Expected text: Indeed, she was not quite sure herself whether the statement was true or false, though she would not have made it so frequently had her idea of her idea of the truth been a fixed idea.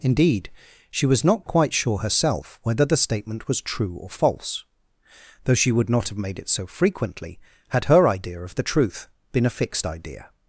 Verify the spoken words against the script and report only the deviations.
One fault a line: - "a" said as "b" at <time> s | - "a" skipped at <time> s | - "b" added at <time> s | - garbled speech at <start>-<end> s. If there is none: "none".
- "her idea of" skipped at 8.6 s